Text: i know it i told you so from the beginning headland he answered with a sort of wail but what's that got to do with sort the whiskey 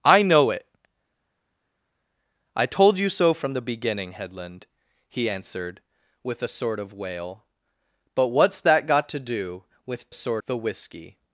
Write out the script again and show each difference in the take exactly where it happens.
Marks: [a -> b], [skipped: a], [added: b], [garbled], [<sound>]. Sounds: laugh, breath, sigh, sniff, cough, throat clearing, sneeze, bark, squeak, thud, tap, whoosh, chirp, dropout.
i know it i told you so from the beginning headland he answered with a sort of wail but what's that got to do with sort the whiskey